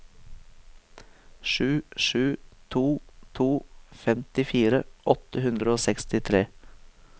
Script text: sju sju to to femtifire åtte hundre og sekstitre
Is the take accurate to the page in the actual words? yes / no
yes